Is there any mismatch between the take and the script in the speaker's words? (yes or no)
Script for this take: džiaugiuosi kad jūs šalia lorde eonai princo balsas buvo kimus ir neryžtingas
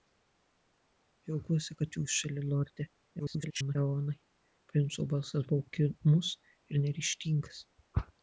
yes